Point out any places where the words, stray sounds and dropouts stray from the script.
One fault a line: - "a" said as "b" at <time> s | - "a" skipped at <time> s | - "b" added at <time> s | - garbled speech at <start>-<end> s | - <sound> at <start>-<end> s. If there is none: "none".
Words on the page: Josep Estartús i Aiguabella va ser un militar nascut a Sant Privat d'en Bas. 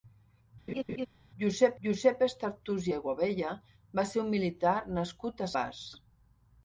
- laugh at 0.7-1.1 s
- "josep" added at 1.8 s
- "Sant Privat d'en" skipped at 5.5 s